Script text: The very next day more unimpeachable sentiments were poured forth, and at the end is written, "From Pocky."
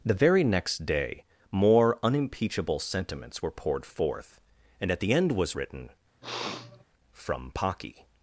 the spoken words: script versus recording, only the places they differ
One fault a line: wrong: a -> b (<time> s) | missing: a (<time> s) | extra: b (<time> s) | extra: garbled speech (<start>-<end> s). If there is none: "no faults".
wrong: is -> was (5.3 s)